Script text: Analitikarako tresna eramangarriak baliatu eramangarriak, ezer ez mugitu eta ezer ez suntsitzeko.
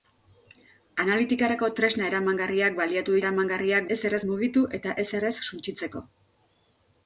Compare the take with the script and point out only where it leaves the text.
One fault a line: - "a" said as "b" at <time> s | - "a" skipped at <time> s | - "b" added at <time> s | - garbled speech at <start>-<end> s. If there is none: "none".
none